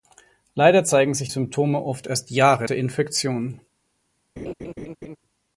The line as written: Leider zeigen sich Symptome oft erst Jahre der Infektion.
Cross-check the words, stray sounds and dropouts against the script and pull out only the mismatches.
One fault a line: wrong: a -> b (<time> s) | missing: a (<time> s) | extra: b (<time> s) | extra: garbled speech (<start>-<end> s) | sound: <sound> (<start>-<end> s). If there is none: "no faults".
sound: laugh (4.4-5.2 s)